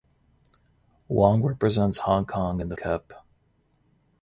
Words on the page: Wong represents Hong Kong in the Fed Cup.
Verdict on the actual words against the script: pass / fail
fail